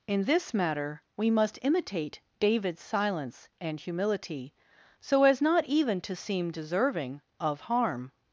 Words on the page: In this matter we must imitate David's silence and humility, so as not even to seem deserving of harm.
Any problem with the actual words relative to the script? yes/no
no